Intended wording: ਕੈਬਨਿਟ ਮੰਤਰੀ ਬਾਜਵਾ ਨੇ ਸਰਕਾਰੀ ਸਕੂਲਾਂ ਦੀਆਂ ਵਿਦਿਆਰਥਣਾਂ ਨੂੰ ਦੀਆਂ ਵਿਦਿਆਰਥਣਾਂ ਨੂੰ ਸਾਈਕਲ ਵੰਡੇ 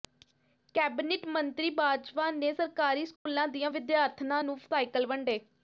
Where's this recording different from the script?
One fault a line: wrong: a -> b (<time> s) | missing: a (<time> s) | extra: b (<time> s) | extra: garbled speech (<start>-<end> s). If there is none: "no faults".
missing: ਦੀਆਂ ਵਿਦਿਆਰਥਣਾਂ ਨੂੰ (4.6 s)